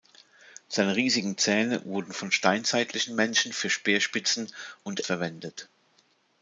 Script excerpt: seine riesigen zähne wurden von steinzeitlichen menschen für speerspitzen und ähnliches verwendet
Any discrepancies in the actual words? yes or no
yes